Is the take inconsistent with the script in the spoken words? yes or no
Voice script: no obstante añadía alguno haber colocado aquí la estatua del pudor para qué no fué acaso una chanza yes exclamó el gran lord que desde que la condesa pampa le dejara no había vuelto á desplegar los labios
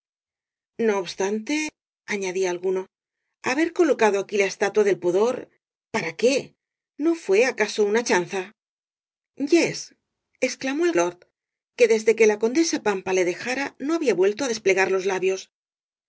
yes